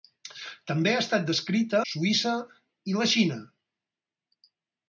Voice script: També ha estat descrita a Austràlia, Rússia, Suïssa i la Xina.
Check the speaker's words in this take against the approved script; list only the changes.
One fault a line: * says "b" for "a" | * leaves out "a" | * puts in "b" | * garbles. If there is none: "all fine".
* leaves out "a Austràlia Rússia"